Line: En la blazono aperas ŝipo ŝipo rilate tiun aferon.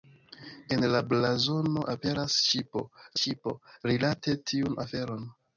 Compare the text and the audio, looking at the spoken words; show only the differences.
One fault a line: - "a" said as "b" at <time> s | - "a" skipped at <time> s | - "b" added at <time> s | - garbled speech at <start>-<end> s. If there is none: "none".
none